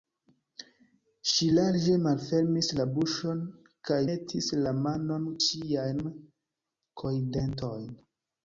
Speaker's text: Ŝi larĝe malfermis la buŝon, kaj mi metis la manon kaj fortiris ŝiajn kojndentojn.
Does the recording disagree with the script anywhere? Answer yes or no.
yes